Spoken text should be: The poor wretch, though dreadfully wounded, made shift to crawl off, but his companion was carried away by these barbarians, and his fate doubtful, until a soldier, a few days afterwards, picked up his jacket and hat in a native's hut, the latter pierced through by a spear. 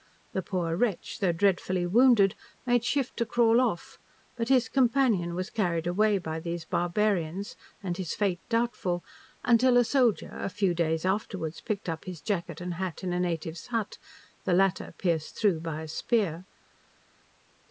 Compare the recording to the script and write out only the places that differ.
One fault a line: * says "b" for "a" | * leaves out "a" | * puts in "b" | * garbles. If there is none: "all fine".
all fine